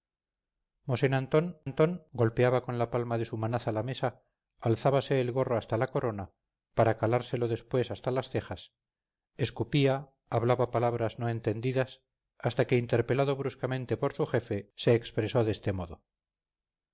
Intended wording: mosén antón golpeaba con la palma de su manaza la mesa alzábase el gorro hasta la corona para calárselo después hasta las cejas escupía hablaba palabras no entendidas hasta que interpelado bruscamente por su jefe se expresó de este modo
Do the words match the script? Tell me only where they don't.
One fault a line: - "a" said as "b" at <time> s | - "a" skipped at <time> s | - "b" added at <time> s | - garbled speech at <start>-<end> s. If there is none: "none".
- "antón" added at 1.7 s